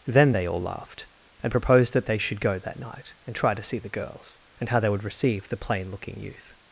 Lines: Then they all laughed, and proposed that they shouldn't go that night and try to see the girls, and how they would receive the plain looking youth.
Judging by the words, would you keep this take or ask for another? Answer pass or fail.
fail